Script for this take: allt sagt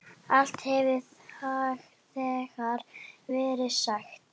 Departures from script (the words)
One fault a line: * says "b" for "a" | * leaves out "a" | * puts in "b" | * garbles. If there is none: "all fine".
* puts in "hefur þegar verið"